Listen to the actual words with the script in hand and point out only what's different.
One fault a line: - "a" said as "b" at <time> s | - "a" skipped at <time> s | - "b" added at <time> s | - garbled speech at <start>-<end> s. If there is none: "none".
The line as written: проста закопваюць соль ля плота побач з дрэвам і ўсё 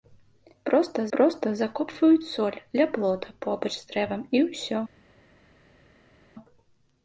- "проста" added at 1.2 s